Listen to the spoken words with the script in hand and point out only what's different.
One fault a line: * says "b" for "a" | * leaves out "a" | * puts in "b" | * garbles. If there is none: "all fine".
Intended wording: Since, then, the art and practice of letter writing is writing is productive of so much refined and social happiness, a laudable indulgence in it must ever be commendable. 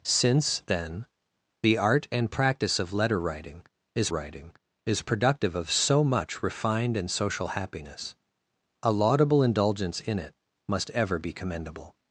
all fine